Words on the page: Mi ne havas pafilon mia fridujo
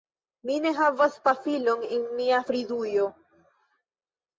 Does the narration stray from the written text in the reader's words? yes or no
yes